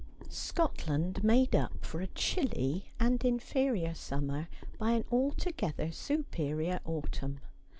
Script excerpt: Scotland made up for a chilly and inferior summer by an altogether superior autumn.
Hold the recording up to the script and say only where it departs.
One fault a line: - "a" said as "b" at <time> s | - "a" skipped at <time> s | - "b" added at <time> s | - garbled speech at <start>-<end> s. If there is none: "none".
none